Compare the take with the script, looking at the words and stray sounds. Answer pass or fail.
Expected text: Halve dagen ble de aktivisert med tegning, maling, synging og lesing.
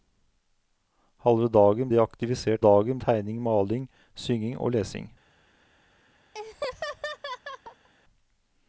fail